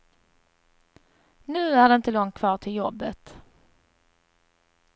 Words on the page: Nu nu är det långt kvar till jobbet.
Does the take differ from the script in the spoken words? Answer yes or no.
yes